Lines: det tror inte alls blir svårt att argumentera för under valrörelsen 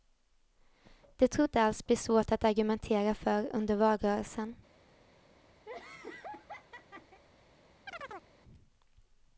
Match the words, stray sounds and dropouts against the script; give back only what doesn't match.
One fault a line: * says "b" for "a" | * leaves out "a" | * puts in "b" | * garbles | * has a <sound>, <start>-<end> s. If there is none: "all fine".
* has a laugh, 5.7-7.2 s
* has a chirp, 7.9-8.3 s